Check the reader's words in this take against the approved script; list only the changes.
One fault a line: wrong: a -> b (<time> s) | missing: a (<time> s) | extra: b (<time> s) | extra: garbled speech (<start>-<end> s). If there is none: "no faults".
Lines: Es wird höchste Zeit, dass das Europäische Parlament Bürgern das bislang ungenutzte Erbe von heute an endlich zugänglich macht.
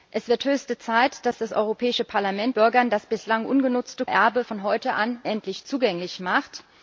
no faults